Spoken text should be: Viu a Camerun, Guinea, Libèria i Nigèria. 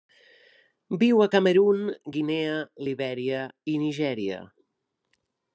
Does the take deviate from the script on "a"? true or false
false